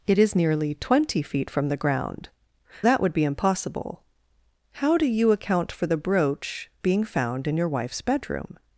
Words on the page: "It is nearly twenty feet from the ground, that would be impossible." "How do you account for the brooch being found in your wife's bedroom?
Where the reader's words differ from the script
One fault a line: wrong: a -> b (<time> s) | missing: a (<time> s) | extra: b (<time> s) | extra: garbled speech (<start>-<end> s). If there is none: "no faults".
no faults